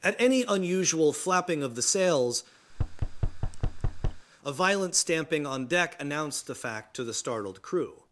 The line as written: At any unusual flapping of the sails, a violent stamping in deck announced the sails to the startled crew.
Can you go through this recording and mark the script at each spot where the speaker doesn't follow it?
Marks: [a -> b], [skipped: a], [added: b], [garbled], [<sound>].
At any unusual flapping of the sails, [thud] a violent stamping [in -> on] deck announced the [sails -> fact] to the startled crew.